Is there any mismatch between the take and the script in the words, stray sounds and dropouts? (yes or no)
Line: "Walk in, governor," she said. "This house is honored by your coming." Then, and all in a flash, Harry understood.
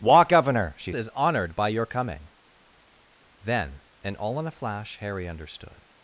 yes